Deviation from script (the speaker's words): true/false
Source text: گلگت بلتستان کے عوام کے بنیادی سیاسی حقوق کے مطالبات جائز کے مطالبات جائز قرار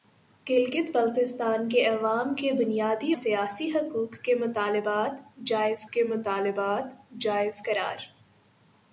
false